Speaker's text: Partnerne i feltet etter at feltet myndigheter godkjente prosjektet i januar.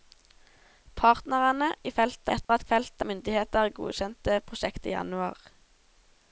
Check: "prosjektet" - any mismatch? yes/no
no